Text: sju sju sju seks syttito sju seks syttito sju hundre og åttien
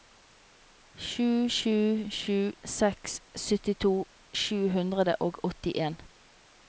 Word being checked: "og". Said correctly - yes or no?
yes